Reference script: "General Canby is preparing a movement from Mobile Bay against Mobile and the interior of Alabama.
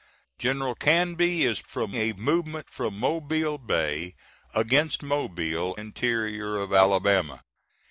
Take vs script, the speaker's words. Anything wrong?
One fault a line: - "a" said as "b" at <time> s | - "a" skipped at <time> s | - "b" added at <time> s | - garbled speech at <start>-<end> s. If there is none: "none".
- "preparing" said as "from" at 1.7 s
- "and the" skipped at 5.8 s